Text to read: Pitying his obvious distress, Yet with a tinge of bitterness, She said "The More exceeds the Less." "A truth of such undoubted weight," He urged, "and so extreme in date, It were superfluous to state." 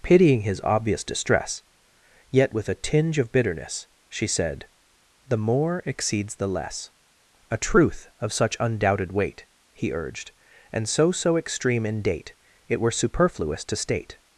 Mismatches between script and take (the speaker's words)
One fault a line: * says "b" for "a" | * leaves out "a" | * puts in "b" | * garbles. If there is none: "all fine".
* puts in "so"